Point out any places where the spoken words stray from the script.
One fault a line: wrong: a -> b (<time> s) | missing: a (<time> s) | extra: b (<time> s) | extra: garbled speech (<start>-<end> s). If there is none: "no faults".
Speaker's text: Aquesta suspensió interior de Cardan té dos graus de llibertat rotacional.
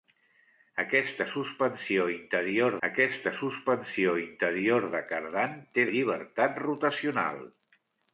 extra: aquesta suspensió interior (2.9 s)
missing: dos graus (5.8 s)